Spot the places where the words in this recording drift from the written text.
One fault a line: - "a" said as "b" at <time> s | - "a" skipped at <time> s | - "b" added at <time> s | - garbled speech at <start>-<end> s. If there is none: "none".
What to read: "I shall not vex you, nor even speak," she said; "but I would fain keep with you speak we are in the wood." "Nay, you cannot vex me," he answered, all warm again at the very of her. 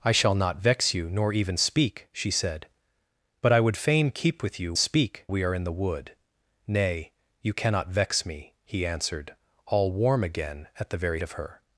none